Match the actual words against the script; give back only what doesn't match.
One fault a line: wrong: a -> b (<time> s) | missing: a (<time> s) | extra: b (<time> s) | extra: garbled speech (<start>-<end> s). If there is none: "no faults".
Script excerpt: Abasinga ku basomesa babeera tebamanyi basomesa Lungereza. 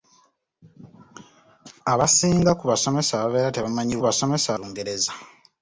no faults